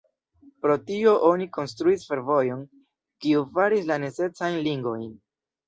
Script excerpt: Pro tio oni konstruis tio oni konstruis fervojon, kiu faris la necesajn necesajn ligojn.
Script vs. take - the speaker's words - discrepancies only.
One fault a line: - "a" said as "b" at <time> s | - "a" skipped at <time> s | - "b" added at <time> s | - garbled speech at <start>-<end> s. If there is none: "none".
- "tio oni konstruis" skipped at 2.1 s
- "necesajn" skipped at 4.6 s